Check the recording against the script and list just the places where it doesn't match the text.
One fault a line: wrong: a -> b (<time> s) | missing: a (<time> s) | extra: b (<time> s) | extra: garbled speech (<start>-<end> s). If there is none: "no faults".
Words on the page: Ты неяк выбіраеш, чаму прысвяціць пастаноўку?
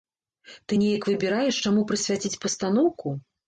no faults